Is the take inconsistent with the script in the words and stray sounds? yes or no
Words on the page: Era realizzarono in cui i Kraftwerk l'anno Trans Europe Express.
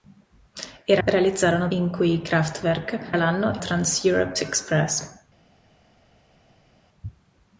no